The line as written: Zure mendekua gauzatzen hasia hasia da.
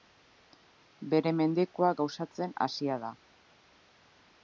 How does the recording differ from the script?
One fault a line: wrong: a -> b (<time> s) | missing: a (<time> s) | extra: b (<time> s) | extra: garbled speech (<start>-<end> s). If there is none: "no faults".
wrong: Zure -> Bere (1.1 s)
missing: hasia (3.0 s)